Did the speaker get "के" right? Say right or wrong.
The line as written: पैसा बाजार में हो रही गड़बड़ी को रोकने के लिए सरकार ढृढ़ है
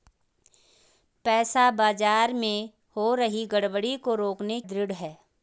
wrong